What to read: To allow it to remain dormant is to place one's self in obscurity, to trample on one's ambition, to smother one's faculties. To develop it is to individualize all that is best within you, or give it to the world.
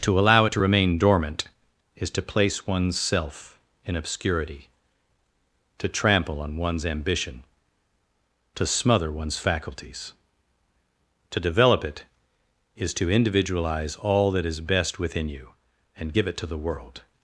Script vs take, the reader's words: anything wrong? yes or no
yes